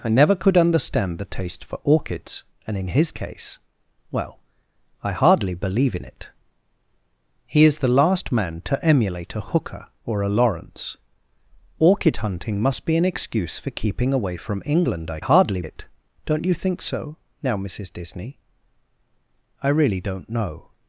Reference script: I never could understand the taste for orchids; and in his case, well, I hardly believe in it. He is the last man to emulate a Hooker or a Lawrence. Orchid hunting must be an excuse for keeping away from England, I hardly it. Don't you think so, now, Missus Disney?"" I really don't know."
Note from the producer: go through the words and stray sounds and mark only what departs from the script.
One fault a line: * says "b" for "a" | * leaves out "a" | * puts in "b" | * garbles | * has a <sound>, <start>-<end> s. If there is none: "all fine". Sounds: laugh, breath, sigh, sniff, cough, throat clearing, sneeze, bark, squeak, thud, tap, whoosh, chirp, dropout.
all fine